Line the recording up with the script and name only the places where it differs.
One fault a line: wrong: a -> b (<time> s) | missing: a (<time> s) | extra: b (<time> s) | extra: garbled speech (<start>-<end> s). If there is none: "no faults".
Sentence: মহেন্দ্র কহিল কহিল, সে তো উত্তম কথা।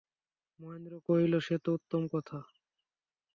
missing: কহিল (1.3 s)